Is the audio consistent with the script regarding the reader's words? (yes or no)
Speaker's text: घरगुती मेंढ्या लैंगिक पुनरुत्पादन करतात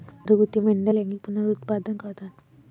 yes